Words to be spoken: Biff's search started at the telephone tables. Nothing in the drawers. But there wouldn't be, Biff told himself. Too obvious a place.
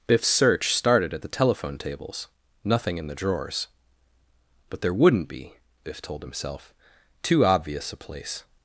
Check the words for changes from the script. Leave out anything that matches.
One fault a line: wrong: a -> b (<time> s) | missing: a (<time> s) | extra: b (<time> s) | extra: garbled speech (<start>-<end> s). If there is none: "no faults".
no faults